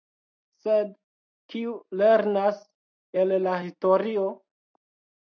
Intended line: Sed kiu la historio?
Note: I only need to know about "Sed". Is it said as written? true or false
true